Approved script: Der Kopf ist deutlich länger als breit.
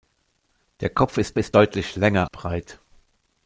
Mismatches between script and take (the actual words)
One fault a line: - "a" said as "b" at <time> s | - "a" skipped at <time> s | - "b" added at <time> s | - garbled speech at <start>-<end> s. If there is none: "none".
- "ist" added at 1.4 s
- "als" skipped at 2.3 s